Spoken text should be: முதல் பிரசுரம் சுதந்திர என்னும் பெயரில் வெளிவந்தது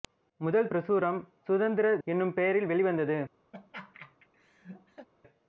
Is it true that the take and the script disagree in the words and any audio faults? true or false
true